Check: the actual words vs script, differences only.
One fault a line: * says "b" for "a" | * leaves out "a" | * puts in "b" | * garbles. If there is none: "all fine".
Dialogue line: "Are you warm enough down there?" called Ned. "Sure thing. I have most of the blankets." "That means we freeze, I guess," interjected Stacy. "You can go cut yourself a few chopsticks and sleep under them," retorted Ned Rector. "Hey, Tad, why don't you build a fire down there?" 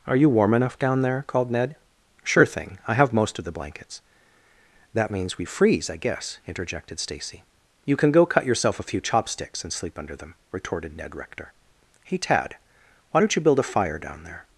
all fine